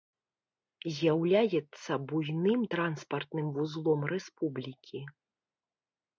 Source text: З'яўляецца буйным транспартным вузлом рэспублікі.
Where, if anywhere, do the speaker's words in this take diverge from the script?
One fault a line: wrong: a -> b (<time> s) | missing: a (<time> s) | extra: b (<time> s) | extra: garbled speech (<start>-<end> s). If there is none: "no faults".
no faults